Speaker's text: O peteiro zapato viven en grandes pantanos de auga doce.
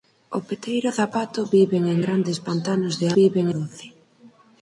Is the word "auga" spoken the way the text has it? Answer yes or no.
no